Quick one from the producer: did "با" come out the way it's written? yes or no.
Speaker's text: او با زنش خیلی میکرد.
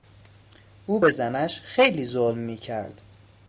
no